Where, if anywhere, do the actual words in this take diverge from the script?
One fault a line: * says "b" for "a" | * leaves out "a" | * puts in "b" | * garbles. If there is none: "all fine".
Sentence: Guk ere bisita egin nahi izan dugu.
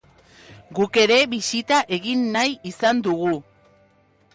all fine